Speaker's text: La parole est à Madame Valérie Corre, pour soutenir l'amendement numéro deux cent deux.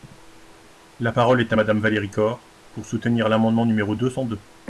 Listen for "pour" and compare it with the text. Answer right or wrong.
right